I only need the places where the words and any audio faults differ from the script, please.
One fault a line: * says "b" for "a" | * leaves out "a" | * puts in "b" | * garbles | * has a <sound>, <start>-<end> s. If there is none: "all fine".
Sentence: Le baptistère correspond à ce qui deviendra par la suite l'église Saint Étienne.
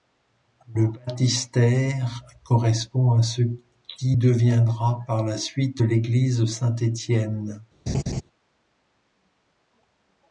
* has a laugh, 7.9-8.2 s